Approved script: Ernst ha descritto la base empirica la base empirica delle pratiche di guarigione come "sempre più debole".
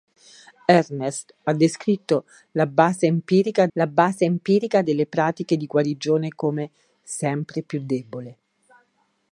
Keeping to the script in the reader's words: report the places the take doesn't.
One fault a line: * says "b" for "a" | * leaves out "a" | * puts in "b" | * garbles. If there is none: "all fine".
all fine